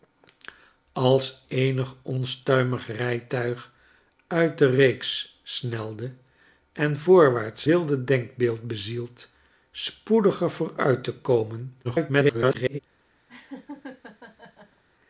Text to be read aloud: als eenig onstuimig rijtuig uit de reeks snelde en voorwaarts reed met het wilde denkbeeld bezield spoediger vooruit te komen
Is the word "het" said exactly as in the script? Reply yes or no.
no